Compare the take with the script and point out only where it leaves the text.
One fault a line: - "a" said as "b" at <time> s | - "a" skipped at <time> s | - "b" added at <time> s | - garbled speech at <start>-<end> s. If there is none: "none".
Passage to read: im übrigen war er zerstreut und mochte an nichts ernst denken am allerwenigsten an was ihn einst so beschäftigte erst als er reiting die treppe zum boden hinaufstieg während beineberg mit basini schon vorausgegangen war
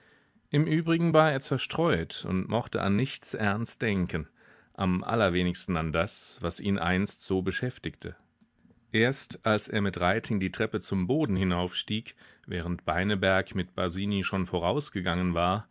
- "das" added at 5.9 s
- "mit" added at 9.8 s